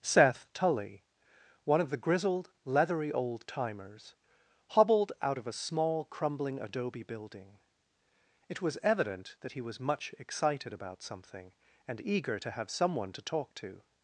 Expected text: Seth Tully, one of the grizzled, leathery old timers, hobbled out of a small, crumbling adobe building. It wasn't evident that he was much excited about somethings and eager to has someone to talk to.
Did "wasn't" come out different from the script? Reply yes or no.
yes